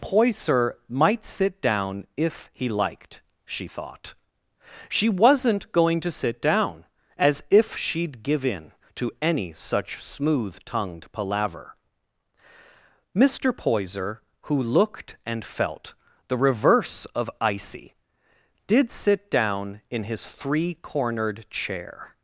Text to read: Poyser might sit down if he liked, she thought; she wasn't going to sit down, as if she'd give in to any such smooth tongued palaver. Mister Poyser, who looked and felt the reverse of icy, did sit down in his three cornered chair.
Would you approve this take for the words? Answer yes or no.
yes